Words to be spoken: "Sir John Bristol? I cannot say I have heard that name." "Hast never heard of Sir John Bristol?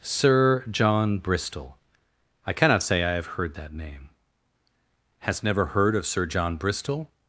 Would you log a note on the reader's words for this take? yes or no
no